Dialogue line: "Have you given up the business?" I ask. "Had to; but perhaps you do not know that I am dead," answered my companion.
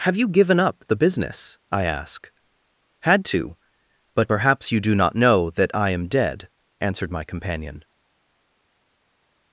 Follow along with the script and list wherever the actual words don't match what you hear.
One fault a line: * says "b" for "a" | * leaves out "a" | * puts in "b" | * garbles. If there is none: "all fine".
all fine